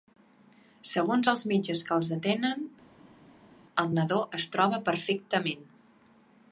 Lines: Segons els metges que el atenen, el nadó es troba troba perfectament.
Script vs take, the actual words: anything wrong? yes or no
yes